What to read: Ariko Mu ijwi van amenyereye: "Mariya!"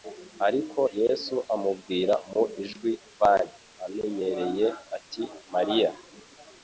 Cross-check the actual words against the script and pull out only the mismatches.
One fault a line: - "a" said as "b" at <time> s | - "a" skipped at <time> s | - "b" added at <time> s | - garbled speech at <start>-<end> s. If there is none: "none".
- "Yesu amubwira" added at 1.0 s
- "ati" added at 5.0 s